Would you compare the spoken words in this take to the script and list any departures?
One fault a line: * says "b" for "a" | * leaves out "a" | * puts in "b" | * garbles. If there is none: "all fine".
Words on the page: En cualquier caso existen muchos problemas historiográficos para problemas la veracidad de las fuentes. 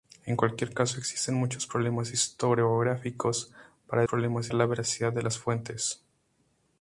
all fine